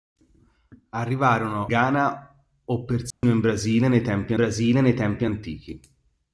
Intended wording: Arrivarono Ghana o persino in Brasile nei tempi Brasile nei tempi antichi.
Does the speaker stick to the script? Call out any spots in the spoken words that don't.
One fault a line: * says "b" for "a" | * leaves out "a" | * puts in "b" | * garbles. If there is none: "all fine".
all fine